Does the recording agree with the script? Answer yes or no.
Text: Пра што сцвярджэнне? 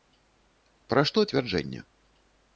yes